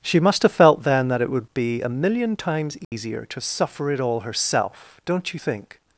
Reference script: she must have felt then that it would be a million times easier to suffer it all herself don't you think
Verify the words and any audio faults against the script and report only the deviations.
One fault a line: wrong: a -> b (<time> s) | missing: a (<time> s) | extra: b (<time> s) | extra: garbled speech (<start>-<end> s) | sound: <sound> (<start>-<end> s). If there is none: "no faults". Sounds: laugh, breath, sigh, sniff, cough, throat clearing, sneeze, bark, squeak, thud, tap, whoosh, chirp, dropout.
sound: dropout (2.8-2.9 s)